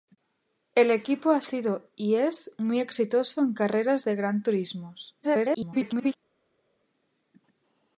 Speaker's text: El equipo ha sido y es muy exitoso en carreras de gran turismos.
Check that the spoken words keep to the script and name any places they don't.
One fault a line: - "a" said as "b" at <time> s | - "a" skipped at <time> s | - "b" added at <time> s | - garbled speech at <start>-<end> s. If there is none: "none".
- garbled speech at 5.2-6.2 s